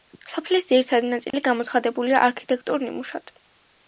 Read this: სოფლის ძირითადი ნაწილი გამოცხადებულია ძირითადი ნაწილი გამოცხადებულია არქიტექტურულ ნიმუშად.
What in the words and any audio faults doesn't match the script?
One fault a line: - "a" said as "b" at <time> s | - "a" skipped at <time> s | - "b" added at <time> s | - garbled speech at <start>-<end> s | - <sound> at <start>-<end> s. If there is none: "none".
- dropout at 1.3-1.3 s
- "ძირითადი ნაწილი გამოცხადებულია" skipped at 2.2 s